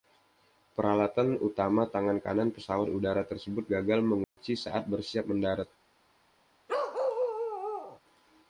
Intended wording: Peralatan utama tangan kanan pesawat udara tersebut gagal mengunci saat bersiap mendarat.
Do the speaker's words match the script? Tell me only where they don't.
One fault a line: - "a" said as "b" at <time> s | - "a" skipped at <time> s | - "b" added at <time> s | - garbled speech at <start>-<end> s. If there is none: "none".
none